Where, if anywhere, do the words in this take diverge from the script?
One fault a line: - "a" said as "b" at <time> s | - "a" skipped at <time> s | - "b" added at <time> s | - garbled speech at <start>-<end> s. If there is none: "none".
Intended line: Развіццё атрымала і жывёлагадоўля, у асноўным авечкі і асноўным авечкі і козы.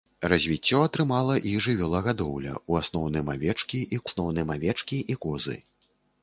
none